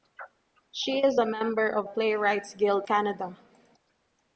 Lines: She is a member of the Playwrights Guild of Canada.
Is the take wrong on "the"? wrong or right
wrong